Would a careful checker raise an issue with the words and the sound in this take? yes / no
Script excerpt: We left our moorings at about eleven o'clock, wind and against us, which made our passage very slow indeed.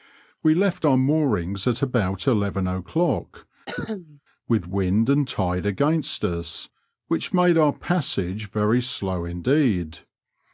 yes